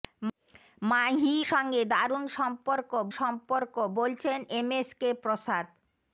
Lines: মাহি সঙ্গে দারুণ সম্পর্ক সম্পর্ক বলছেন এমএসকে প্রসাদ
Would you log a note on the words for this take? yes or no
no